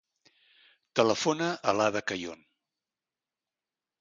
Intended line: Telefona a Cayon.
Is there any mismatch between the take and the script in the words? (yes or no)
yes